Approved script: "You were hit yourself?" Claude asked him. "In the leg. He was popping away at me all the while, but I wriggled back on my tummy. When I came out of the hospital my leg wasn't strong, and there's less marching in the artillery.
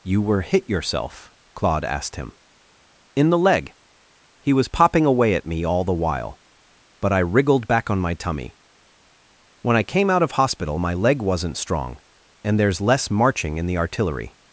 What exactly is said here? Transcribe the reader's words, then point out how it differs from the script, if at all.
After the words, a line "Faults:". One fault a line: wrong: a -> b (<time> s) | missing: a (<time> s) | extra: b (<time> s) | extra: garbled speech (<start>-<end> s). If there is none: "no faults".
"You were hit yourself?" Claude asked him. "In the leg. He was popping away at me all the while, but I wriggled back on my tummy. When I came out of hospital my leg wasn't strong, and there's less marching in the artillery.
Faults:
missing: the (10.3 s)